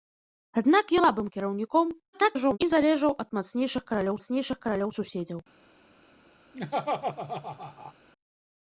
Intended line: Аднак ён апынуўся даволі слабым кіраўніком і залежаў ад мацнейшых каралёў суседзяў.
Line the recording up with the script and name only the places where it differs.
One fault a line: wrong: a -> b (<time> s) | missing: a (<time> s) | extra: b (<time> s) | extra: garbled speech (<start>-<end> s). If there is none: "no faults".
missing: ён апынуўся даволі (0.9 s)
extra: garbled speech (2.1-2.6 s)
extra: мацнейшых каралёў (4.2 s)